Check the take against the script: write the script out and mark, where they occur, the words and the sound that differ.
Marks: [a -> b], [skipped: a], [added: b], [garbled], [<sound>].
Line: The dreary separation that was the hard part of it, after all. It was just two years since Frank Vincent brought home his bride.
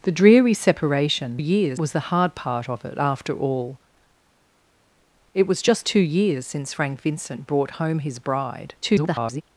The dreary separation [that -> years] was the hard part of it, after all. It was just two years since Frank Vincent brought home his bride. [garbled]